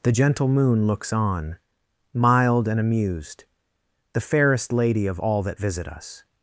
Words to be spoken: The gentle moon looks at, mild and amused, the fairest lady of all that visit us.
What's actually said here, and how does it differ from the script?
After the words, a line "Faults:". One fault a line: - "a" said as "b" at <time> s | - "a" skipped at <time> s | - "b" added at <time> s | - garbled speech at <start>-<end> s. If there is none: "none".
The gentle moon looks on, mild and amused, the fairest lady of all that visit us.
Faults:
- "at" said as "on" at 1.1 s